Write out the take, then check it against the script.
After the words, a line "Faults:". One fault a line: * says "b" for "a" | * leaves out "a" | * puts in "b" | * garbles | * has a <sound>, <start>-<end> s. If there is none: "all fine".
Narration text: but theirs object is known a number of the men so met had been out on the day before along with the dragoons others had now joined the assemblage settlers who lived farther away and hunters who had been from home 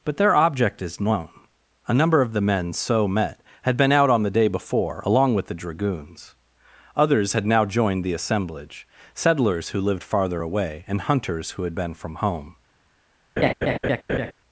but their object is known a number of the men so met had been out on the day before along with the dragoons others had now joined the assemblage settlers who lived farther away and hunters who had been from home
Faults:
* says "their" for "theirs"
* has a laugh, 13.4-14.3 s